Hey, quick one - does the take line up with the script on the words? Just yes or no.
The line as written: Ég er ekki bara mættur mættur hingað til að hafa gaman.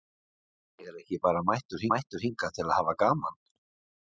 yes